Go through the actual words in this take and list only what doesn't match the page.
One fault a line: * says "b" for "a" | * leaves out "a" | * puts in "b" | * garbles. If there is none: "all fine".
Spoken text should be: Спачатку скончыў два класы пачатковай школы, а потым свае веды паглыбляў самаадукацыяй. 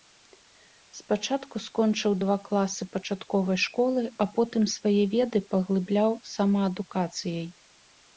all fine